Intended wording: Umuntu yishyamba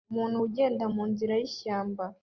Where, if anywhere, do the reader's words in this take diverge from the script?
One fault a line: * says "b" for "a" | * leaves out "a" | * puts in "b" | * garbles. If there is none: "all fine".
* puts in "ugenda munzira"